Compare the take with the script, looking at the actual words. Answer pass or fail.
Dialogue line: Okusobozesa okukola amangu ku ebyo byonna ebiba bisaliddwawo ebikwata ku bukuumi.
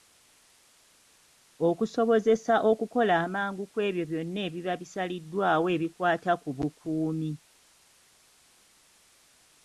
pass